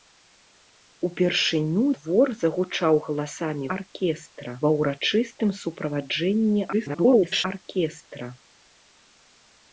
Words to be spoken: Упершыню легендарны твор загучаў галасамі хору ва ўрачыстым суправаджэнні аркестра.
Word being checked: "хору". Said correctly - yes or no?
no